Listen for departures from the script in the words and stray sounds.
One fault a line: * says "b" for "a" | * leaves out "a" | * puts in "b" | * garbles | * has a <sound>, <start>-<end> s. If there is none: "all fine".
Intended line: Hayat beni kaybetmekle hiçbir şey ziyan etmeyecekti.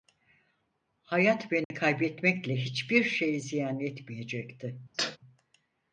* has a dropout, 1.6-1.7 s
* has a sneeze, 4.9-5.2 s